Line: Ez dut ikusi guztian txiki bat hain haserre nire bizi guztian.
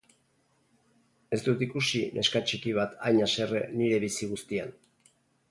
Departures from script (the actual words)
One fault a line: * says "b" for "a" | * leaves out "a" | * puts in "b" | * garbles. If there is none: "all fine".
* says "neska" for "guztian"